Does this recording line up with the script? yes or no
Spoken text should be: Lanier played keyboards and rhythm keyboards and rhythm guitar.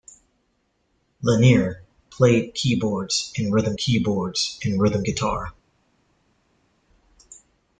yes